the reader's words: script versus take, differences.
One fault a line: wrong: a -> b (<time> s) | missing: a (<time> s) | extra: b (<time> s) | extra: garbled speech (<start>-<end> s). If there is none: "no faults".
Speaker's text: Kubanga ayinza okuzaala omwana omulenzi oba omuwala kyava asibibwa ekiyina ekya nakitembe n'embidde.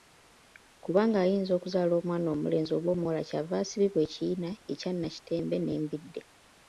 no faults